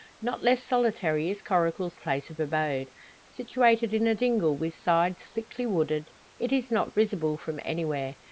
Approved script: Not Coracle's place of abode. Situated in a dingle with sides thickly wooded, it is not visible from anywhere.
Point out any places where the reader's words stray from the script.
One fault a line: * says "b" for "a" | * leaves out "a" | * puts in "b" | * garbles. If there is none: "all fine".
* puts in "less solitary is"